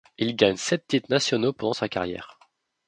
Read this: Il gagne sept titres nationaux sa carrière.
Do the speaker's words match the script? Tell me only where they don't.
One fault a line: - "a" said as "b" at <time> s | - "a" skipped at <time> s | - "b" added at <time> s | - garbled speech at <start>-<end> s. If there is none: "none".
- "pendant" added at 1.5 s